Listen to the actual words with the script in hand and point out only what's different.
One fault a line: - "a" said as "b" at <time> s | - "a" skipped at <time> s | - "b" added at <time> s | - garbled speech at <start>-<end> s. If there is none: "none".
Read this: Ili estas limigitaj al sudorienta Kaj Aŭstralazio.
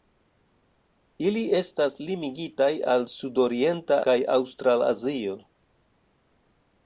none